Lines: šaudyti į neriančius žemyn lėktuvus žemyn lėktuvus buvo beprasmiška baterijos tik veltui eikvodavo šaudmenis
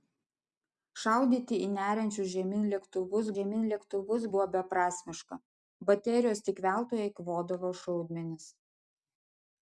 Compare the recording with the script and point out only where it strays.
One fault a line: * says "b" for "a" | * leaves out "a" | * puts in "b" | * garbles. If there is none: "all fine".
all fine